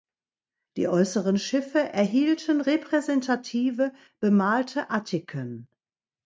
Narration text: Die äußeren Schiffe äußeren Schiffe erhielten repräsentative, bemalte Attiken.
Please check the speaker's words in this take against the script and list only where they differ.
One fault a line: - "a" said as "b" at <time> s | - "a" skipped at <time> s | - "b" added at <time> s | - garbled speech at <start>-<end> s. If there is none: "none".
- "äußeren Schiffe" skipped at 1.8 s